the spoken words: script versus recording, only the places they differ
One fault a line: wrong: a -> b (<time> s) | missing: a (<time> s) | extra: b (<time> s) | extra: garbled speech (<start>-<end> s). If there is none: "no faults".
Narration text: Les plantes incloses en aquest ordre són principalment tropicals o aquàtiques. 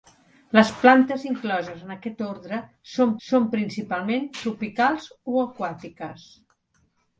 extra: són (3.3 s)